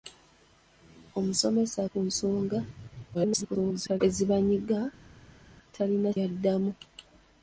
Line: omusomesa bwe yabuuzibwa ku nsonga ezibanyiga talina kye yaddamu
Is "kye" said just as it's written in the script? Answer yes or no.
no